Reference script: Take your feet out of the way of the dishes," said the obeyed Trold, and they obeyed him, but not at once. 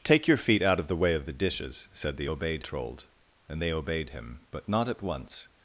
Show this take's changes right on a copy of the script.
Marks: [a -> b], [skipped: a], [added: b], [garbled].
Take your feet out of the way of the dishes," said the obeyed Trold, and they obeyed him, but not at once.